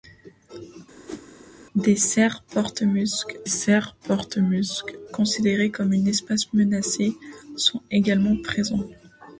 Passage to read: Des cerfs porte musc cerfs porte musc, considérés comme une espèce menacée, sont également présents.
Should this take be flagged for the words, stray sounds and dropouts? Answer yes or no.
yes